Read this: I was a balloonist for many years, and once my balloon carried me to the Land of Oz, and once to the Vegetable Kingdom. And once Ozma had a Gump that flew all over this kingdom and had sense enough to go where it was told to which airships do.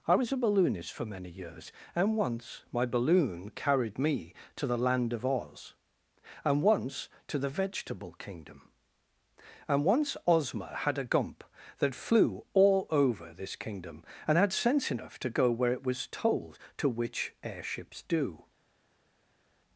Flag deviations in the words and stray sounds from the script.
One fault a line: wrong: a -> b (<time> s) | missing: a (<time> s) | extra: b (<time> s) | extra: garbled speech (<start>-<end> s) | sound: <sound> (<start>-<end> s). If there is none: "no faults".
no faults